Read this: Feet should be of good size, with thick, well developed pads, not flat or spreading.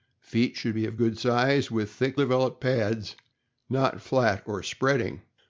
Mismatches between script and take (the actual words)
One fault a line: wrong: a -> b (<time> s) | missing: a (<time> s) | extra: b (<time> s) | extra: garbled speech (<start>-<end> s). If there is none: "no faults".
missing: well (2.2 s)